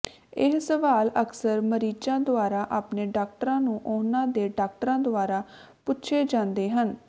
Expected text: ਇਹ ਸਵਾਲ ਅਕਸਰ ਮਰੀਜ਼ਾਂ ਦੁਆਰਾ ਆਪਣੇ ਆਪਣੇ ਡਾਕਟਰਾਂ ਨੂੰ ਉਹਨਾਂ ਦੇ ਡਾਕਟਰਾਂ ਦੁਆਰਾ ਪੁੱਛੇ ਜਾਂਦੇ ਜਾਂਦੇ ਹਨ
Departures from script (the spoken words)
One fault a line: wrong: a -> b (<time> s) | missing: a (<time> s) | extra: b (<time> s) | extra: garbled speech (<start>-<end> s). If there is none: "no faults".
missing: ਆਪਣੇ (3.0 s)
missing: ਜਾਂਦੇ (6.7 s)